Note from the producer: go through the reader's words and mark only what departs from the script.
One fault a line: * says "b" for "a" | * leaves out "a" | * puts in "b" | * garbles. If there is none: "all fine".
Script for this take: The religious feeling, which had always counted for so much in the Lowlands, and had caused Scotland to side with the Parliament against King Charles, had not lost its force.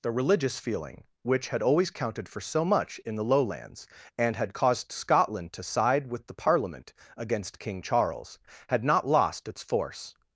all fine